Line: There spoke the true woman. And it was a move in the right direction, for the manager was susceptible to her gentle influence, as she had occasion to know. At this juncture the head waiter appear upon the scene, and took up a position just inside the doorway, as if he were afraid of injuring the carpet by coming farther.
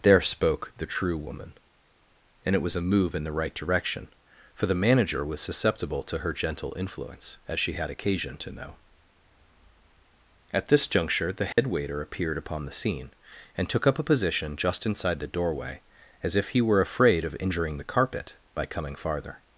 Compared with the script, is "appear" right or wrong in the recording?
wrong